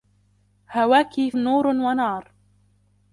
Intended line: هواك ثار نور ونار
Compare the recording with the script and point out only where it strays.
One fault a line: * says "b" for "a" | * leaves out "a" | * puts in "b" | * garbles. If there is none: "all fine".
* leaves out "ثار"